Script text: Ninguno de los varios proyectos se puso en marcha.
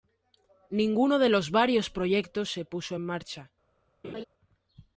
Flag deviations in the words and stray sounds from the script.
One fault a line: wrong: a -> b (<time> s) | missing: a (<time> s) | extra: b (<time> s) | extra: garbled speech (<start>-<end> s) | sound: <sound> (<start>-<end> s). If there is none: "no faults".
sound: laugh (4.0-4.2 s)